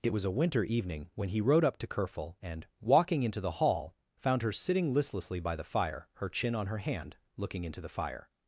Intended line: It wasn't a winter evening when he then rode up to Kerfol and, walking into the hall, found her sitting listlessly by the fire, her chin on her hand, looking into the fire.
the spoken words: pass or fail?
fail